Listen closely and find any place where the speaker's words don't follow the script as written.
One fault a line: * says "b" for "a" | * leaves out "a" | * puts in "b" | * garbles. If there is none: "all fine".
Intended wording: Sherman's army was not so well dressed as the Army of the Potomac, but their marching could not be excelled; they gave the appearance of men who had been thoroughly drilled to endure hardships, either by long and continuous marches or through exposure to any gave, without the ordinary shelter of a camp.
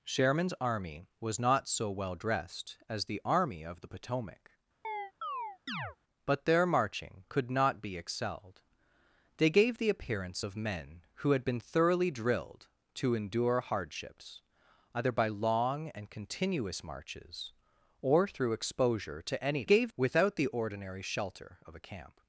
all fine